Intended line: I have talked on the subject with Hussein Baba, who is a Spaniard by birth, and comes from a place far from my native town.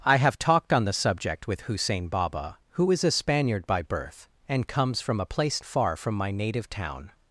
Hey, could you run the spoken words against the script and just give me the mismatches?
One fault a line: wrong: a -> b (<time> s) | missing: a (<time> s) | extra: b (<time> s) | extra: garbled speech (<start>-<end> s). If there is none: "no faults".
no faults